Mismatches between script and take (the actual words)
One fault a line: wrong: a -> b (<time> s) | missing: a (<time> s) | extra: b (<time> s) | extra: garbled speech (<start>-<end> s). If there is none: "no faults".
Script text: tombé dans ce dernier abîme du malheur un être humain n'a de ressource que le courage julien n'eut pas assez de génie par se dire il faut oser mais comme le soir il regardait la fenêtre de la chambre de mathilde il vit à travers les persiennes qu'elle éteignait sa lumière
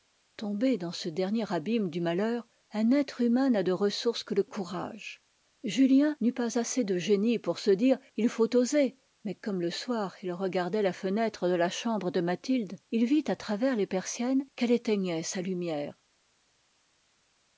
wrong: par -> pour (7.4 s)